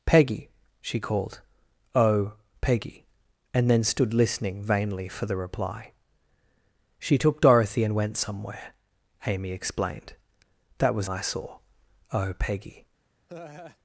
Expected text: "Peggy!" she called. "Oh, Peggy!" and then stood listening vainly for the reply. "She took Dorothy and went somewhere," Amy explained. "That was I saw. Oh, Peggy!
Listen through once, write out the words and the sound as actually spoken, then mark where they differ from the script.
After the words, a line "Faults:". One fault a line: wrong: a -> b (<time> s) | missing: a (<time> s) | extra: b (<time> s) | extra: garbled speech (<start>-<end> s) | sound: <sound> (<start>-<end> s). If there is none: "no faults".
"Peggy!" she called. "Oh, Peggy!" and then stood listening vainly for the reply. "She took Dorothy and went somewhere," Amy explained. "That was I saw. Oh, Peggy!
Faults:
sound: laugh (13.3-13.8 s)